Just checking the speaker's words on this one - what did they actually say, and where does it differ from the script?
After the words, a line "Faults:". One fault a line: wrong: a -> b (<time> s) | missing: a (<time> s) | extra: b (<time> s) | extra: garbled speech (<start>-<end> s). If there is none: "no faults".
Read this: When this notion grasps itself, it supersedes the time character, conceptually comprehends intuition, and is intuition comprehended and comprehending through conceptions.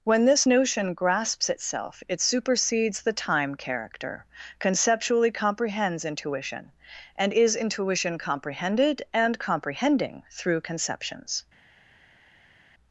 When this notion grasps itself, it supersedes the time character, conceptually comprehends intuition, and is intuition comprehended and comprehending through conceptions.
Faults:
no faults